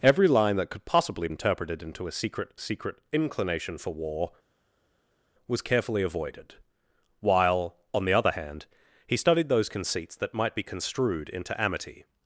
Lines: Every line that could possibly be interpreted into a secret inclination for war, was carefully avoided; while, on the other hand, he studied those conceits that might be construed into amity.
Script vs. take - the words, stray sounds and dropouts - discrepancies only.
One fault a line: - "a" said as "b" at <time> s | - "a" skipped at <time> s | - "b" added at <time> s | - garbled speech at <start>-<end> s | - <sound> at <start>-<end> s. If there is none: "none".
- "be" skipped at 1.3 s
- "secret" added at 2.6 s